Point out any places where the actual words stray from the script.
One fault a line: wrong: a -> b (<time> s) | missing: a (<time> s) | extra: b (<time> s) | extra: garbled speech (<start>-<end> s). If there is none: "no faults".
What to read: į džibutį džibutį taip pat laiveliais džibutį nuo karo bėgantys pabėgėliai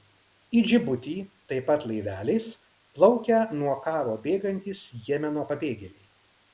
missing: džibutį (1.1 s)
wrong: džibutį -> plaukia (3.0 s)
extra: jemeno (5.1 s)